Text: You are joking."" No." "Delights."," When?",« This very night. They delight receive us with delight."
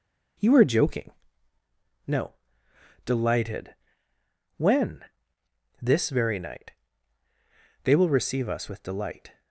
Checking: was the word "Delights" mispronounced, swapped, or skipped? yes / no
yes